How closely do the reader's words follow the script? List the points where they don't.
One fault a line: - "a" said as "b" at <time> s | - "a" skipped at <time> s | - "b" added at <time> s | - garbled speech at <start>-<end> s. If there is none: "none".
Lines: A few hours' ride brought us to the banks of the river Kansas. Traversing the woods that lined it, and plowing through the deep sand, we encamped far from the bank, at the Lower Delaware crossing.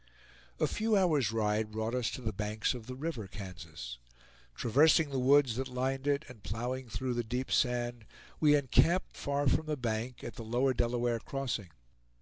none